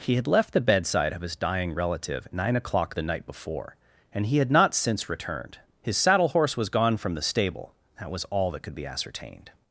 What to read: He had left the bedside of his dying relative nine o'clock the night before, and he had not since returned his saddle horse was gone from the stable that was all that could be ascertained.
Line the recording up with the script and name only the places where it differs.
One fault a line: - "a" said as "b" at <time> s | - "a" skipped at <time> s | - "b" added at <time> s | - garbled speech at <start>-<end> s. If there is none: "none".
none